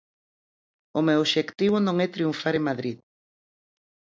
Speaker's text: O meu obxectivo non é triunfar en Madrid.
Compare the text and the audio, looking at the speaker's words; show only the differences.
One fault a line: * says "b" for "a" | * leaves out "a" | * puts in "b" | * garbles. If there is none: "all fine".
all fine